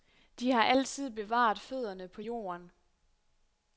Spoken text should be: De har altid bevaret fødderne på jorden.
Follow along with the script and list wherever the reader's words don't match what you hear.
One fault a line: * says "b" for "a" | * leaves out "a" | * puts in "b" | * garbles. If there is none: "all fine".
all fine